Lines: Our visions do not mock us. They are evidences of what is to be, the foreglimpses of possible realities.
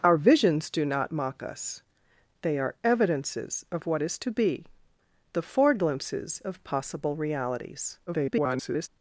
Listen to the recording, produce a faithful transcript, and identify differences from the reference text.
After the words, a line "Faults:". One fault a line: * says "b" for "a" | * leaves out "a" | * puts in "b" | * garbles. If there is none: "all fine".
Our visions do not mock us. They are evidences of what is to be, the foreglimpses of possible realities. [garbled]
Faults:
* garbles